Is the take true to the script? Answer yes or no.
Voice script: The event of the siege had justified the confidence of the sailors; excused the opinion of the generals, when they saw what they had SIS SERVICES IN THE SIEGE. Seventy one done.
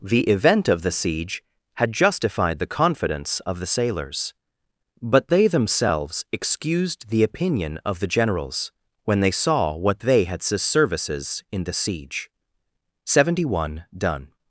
no